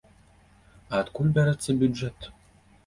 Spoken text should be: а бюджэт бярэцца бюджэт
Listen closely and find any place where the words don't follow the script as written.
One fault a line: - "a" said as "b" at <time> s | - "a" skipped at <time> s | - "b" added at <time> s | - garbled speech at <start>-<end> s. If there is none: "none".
- "бюджэт" said as "адкуль" at 1.0 s